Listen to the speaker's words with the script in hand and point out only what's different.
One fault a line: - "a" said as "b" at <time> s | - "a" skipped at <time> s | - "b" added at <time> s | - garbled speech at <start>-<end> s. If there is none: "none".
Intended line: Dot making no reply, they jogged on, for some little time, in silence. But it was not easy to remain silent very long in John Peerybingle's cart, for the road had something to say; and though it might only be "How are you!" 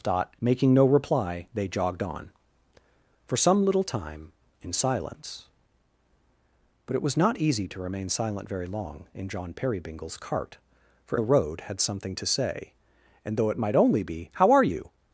none